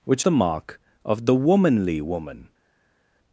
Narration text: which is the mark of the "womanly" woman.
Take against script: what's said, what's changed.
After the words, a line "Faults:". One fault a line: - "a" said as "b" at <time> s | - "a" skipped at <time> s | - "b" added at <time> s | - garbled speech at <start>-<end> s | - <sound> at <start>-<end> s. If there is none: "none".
which the mark of the "womanly" woman.
Faults:
- "is" skipped at 0.2 s